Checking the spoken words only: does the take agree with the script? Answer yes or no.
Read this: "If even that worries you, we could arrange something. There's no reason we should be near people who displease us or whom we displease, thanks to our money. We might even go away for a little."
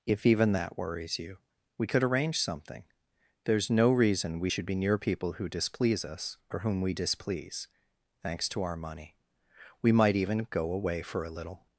yes